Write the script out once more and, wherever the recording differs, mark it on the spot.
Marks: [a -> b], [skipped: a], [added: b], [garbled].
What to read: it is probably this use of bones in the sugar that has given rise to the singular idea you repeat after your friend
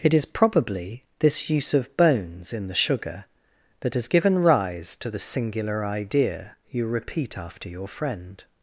it is probably this use of bones in the sugar that has given rise to the singular idea you repeat after your friend